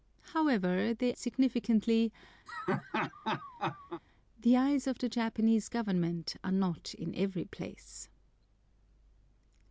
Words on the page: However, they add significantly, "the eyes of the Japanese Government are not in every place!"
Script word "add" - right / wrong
wrong